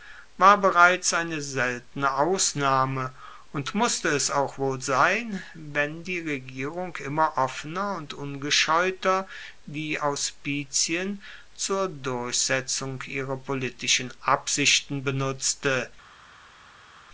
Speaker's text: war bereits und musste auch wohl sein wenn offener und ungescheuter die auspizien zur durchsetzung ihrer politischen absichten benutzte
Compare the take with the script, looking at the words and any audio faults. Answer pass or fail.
fail